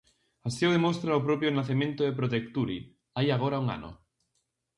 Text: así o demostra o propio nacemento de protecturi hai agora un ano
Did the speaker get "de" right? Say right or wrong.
right